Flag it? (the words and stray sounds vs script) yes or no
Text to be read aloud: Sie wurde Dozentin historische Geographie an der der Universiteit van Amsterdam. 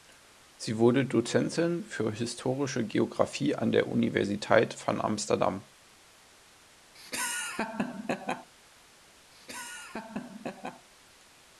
yes